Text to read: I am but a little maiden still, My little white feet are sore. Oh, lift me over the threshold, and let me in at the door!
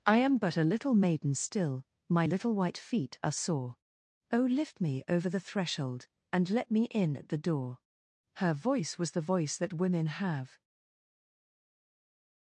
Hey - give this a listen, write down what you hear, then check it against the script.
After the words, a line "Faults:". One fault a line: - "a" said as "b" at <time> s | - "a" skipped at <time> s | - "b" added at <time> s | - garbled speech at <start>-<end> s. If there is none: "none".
I am but a little maiden still, My little white feet are sore. Oh, lift me over the threshold, and let me in at the door! Her voice was the voice that women have
Faults:
- "Her voice was the voice that women have" added at 8.3 s